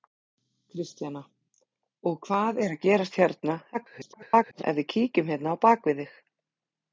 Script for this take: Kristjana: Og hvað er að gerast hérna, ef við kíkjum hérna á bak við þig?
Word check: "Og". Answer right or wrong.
right